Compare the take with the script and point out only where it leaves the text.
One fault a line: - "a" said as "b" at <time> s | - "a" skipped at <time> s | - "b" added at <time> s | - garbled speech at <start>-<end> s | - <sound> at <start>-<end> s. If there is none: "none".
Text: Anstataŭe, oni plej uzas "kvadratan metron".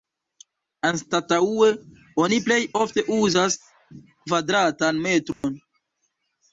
- "ofte" added at 2.8 s
- dropout at 5.3-5.4 s